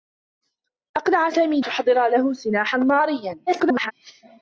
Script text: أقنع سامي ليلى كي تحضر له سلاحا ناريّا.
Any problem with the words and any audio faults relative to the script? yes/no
yes